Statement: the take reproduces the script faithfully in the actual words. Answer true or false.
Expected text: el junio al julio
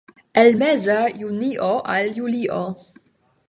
false